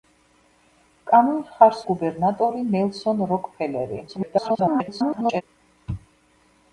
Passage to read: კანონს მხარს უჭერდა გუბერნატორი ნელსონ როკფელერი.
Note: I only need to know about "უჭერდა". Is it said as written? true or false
false